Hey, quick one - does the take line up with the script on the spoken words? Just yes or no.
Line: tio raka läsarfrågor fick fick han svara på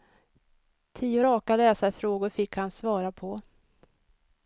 no